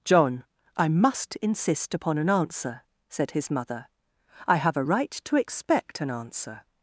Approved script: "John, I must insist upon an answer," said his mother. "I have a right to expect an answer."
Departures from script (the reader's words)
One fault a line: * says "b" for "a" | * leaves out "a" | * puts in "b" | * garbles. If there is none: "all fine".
all fine